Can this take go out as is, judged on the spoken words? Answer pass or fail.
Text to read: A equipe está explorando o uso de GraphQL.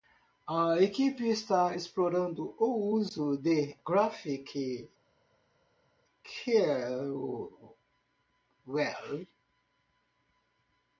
pass